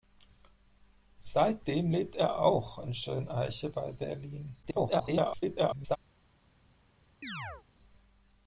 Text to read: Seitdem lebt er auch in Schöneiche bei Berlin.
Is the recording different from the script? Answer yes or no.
yes